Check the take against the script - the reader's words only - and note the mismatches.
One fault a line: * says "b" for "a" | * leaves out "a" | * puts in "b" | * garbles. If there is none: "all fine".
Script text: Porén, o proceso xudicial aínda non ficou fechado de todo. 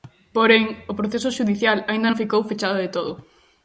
all fine